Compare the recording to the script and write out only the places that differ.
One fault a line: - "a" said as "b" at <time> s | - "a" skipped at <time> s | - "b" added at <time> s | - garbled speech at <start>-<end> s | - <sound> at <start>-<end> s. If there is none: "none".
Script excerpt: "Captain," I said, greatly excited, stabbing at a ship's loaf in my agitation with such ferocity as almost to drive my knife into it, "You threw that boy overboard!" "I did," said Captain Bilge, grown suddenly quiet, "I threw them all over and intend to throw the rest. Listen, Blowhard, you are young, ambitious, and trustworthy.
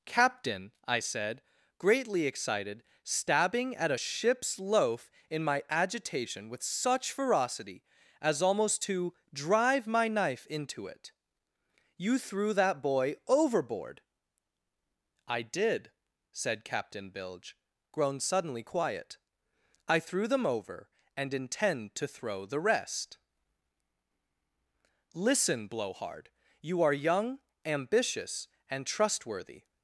- "all" skipped at 20.4 s